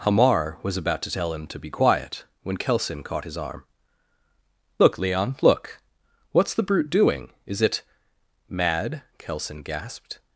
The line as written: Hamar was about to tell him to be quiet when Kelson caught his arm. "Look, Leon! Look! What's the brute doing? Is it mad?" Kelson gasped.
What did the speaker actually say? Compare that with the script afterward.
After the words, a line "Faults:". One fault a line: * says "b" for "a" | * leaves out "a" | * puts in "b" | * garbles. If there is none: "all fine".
Hamar was about to tell him to be quiet when Kelson caught his arm. "Look, Leon! Look! What's the brute doing? Is it mad?" Kelson gasped.
Faults:
all fine